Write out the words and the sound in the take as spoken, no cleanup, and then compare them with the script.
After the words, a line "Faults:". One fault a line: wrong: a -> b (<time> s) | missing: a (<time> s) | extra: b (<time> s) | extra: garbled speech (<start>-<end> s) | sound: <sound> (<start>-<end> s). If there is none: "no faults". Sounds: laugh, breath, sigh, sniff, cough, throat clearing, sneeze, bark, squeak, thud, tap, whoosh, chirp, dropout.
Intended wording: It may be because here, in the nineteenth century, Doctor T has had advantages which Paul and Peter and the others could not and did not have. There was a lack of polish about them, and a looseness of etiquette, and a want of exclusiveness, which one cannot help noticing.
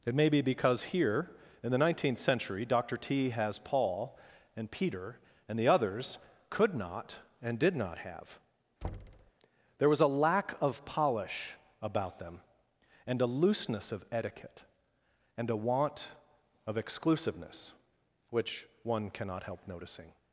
It may be because here, in the nineteenth century, Doctor T has Paul and Peter and the others could not and did not have. There was a lack of polish about them, and a looseness of etiquette, and a want of exclusiveness, which one cannot help noticing.
Faults:
missing: had advantages which (3.6 s)
sound: thud (8.8-9.3 s)